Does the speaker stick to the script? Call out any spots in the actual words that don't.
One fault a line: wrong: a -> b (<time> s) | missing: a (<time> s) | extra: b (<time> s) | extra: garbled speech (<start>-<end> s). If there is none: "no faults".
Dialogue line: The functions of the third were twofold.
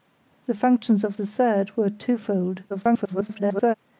extra: garbled speech (2.7-3.7 s)